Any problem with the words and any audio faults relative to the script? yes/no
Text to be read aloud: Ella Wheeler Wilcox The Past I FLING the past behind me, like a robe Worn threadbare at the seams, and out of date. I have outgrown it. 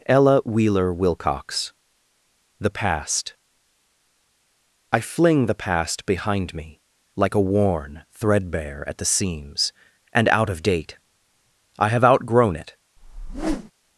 yes